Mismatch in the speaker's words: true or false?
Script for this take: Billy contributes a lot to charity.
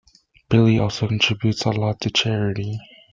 true